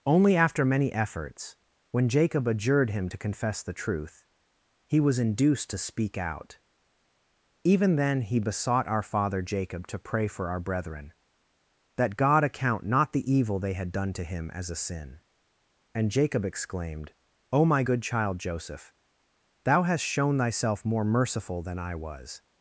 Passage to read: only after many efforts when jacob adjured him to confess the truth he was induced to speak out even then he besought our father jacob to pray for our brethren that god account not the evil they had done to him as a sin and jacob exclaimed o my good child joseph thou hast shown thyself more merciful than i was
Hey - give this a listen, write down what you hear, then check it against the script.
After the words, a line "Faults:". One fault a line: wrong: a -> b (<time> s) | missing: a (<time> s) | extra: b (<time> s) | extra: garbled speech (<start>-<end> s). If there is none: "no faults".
only after many efforts when jacob adjured him to confess the truth he was induced to speak out even then he besought our father jacob to pray for our brethren that god account not the evil they had done to him as a sin and jacob exclaimed o my good child joseph thou hast shown thyself more merciful than i was
Faults:
no faults